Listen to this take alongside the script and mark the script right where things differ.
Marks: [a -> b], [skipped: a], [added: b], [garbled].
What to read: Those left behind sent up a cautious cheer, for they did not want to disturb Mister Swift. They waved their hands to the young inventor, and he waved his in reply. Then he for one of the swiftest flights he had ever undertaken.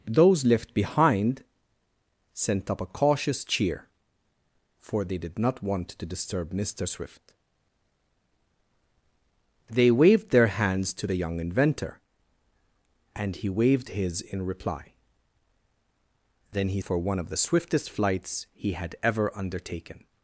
Those left behind sent up a cautious cheer, for they did not want to disturb Mister Swift. They waved their hands to the young inventor, and he waved his in reply. Then he for one of the swiftest flights he had ever undertaken.